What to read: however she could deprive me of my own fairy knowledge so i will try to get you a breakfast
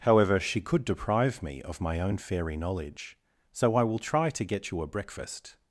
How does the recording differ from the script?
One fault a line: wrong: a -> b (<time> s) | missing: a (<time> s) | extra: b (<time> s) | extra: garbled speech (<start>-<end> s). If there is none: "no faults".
no faults